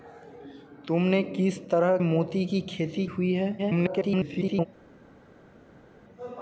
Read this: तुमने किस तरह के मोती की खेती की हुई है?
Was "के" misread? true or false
true